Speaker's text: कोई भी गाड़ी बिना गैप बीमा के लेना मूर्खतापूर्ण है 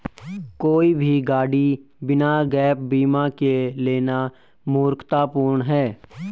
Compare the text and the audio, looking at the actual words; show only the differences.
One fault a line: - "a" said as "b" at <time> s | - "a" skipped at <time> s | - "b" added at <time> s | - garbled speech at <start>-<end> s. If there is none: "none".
none